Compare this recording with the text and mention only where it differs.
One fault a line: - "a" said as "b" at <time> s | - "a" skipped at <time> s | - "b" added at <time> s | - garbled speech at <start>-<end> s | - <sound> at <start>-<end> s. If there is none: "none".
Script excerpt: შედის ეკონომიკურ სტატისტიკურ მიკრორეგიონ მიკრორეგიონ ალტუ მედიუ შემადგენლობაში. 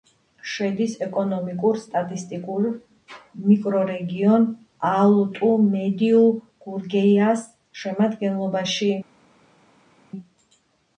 - "მიკრორეგიონ" skipped at 4.5 s
- "გურგეიას" added at 6.7 s